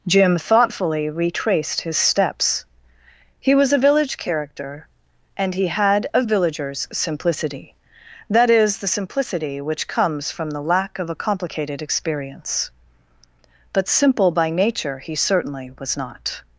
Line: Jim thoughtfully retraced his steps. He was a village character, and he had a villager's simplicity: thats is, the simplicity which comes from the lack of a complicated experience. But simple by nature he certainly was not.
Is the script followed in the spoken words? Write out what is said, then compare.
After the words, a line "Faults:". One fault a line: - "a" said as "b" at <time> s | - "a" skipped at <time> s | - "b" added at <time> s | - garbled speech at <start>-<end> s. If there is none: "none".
Jim thoughtfully retraced his steps. He was a village character, and he had a villager's simplicity: that is, the simplicity which comes from the lack of a complicated experience. But simple by nature he certainly was not.
Faults:
- "thats" said as "that" at 8.3 s